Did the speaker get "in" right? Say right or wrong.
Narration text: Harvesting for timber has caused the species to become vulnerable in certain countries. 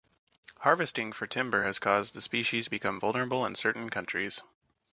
right